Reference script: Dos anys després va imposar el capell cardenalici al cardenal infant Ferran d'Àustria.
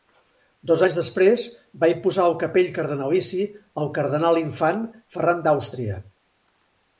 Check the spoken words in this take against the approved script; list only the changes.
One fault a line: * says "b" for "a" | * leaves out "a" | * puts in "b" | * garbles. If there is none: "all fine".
all fine